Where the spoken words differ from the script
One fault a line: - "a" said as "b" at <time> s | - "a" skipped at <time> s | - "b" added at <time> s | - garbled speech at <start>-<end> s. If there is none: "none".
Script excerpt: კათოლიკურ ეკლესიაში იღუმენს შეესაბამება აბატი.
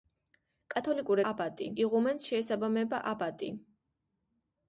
- "ეკლესიაში" said as "აბატი" at 1.3 s